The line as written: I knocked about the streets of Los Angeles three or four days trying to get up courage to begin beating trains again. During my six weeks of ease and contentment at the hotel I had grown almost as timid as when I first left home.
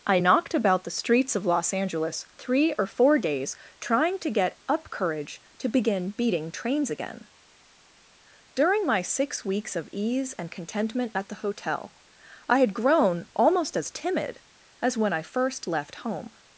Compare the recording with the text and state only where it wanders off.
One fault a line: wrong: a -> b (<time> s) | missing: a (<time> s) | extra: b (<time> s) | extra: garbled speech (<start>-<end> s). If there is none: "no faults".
no faults